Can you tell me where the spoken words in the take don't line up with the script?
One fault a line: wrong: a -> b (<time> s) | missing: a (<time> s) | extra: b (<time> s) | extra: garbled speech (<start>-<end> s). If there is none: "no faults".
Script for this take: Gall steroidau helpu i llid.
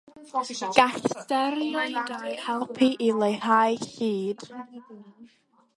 extra: leihau (3.2 s)